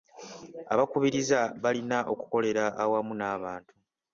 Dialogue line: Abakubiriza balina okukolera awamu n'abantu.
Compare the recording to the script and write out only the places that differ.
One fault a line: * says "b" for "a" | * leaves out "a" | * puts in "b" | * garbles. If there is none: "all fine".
all fine